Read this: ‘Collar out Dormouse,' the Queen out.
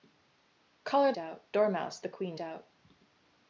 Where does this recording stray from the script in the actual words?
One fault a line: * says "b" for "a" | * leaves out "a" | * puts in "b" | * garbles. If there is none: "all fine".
all fine